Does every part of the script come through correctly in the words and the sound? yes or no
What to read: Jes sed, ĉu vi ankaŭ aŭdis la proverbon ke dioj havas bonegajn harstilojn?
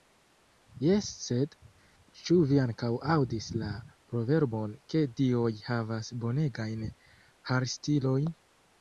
yes